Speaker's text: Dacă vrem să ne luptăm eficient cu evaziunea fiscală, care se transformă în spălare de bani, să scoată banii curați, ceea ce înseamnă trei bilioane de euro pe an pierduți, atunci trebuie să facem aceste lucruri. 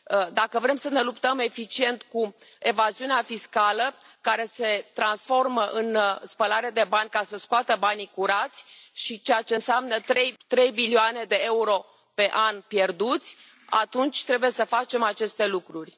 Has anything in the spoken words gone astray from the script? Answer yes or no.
yes